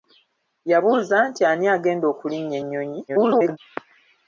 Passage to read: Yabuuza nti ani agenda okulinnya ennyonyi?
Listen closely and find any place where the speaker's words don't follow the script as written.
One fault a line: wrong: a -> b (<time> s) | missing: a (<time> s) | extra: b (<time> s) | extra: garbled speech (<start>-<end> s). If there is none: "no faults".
extra: garbled speech (3.1-3.6 s)